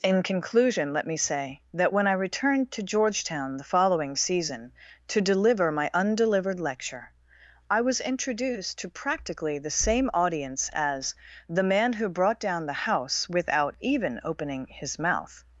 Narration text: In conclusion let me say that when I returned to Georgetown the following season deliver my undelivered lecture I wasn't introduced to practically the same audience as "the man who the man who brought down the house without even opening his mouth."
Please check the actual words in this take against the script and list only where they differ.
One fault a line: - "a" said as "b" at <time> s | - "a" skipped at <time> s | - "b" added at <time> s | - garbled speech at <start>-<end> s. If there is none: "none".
- "to" added at 5.1 s
- "wasn't" said as "was" at 7.8 s
- "the man who" skipped at 12.1 s